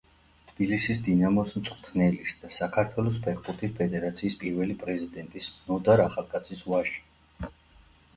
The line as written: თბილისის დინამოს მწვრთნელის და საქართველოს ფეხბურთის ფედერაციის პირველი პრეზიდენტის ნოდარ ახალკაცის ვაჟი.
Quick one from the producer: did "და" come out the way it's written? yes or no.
yes